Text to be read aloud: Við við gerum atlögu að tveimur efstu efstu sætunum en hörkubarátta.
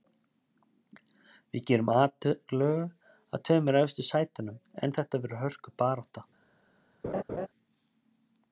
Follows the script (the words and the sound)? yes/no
no